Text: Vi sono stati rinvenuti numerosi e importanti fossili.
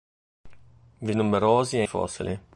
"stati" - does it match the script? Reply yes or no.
no